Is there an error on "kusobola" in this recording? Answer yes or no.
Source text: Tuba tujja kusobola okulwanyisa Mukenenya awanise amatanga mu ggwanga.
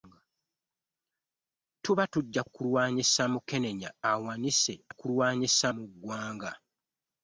yes